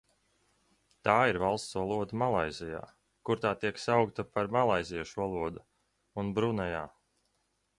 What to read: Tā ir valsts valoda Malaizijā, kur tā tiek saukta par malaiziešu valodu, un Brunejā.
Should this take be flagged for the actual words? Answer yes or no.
no